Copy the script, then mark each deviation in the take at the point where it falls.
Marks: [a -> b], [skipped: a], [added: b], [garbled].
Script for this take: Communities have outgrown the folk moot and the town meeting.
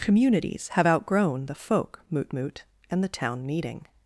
Communities have outgrown the folk moot [added: moot] and the town meeting.